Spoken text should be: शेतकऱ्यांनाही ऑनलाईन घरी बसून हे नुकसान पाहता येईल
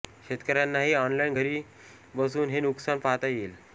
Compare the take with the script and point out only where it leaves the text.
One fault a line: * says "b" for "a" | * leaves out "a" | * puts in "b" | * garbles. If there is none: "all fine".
all fine